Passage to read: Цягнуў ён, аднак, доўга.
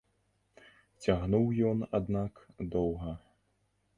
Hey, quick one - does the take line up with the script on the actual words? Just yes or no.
yes